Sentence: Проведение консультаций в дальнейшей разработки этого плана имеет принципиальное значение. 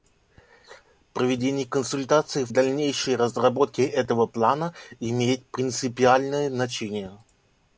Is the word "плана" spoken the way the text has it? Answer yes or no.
yes